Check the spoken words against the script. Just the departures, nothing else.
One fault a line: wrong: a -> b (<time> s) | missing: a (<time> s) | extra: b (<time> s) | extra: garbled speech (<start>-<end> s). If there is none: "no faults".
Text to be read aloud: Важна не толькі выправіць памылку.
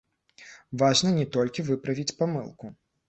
no faults